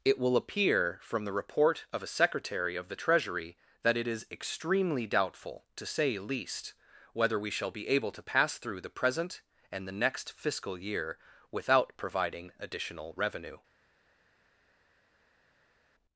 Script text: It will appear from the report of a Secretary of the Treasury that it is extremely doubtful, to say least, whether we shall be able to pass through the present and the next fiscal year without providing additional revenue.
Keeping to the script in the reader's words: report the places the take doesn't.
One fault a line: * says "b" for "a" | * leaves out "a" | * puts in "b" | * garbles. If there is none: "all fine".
all fine